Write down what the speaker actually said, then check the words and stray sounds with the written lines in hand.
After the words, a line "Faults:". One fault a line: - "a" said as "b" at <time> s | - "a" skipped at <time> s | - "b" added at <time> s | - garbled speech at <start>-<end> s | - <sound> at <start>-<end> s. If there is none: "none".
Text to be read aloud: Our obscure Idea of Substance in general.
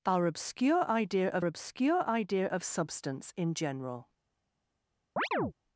Our obscure Idea of obscure Idea of Substance in general.
Faults:
- "obscure Idea of" added at 1.4 s
- chirp at 5.2-5.5 s